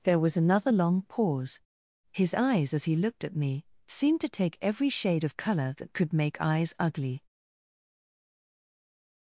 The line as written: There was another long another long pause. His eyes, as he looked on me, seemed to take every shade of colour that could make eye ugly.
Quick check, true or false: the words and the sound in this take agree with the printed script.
false